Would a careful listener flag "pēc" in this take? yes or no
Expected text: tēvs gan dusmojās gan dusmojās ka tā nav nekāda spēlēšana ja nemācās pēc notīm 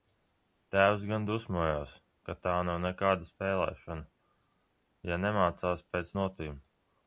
no